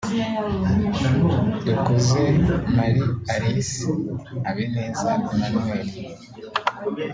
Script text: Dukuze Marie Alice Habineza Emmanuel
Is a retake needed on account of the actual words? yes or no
no